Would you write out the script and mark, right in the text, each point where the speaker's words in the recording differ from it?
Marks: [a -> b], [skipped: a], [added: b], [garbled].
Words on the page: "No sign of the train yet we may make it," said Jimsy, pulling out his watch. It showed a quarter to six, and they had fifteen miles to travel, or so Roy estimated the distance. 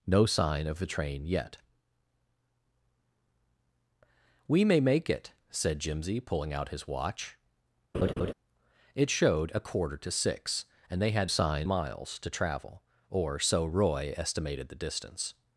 "No sign of the train yet we may make it," said Jimsy, pulling out his watch. It showed a quarter to six, and they had [fifteen -> sign] miles to travel, or so Roy estimated the distance.